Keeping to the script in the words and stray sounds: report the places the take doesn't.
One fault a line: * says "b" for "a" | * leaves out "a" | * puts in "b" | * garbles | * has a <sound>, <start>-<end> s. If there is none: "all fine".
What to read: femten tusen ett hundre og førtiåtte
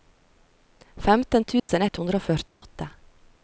* has a dropout, 1.6-1.7 s
* has a dropout, 2.5-2.6 s